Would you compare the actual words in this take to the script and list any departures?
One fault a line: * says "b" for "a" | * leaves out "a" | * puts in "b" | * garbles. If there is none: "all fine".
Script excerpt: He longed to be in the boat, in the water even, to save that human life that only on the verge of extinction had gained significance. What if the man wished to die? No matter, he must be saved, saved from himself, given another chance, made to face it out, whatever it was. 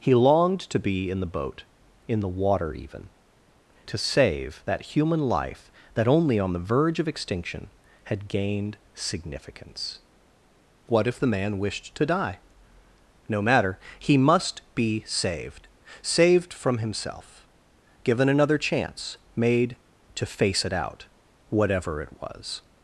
all fine